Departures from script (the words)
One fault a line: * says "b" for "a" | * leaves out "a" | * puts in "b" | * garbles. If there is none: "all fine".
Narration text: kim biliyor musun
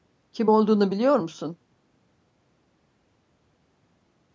* puts in "olduğunu"